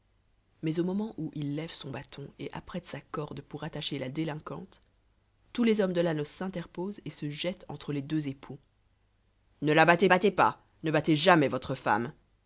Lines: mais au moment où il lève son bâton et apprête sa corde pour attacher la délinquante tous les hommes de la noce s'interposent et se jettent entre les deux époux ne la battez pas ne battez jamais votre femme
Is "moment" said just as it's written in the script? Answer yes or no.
yes